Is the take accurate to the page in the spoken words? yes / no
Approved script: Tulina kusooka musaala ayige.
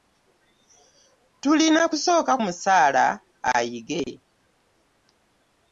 yes